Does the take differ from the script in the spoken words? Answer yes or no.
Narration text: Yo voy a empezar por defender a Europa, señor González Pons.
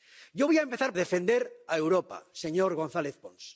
yes